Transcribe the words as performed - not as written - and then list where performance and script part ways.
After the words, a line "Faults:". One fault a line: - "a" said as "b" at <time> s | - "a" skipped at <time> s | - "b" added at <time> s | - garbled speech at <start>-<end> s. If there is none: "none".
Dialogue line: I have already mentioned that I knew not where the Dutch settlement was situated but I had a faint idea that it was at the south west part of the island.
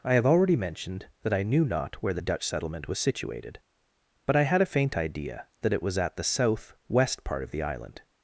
I have already mentioned that I knew not where the Dutch settlement was situated but I had a faint idea that it was at the south west part of the island.
Faults:
none